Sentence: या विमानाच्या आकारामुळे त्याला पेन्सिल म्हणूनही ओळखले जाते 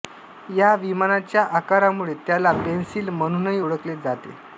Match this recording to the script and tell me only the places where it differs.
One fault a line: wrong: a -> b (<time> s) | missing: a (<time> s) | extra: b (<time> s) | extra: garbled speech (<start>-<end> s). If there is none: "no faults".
no faults